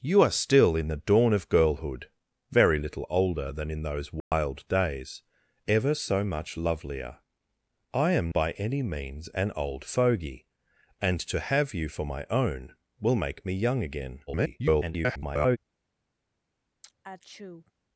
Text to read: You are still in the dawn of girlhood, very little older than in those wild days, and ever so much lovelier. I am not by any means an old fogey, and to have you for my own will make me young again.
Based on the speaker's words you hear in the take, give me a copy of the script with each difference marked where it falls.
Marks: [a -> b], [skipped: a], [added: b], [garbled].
You are still in the dawn of girlhood, very little older than in those wild days, [skipped: and] ever so much lovelier. I am [skipped: not] by any means an old fogey, and to have you for my own will make me young again. [garbled]